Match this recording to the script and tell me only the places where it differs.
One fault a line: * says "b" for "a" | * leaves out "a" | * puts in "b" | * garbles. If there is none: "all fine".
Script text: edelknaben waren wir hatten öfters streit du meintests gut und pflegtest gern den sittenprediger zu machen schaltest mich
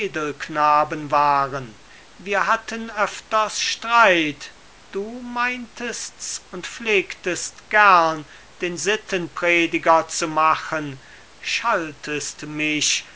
* leaves out "gut"